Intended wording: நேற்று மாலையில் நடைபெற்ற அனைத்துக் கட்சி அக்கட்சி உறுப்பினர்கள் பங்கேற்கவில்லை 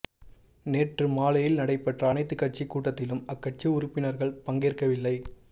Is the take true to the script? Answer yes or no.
no